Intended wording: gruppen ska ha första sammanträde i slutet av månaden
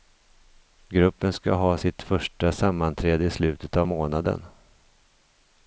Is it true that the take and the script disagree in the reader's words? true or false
true